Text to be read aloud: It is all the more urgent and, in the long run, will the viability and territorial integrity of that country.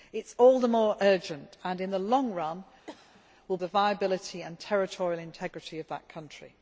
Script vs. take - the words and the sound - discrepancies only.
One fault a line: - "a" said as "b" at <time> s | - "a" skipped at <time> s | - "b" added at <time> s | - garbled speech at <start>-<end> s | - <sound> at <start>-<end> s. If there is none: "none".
- cough at 2.9-3.2 s